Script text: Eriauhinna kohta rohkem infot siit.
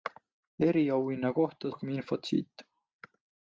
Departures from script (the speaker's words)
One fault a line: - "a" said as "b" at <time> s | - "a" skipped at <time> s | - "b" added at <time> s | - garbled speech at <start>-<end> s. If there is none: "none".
none